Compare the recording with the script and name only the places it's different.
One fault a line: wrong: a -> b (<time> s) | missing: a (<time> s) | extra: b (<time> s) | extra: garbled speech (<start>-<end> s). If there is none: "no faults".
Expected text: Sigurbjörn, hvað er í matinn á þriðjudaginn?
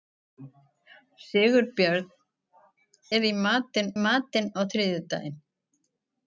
missing: hvað (2.1 s)
extra: matinn (4.0 s)